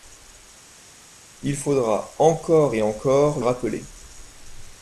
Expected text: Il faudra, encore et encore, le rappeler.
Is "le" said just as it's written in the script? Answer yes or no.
no